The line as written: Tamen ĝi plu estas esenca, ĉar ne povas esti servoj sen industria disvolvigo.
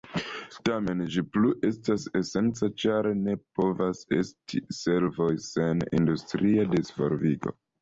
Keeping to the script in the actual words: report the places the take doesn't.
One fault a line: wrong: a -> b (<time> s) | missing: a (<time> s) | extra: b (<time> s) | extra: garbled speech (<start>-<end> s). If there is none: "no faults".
no faults